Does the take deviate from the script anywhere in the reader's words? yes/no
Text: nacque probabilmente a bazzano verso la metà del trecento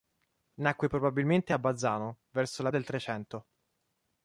yes